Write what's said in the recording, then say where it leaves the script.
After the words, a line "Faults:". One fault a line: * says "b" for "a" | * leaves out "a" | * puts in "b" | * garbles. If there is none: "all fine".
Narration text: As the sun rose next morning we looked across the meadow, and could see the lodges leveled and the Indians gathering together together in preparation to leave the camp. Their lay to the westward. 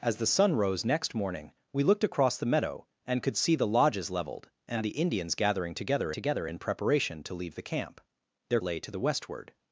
As the sun rose next morning we looked across the meadow, and could see the lodges leveled and the Indians gathering together together in preparation to leave the camp. Their lay to the westward.
Faults:
all fine